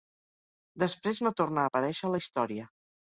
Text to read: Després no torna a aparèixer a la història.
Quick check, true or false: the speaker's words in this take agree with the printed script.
true